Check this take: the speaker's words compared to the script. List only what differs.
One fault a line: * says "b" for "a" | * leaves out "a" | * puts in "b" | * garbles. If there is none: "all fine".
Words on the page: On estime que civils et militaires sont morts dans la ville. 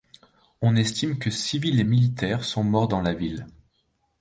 all fine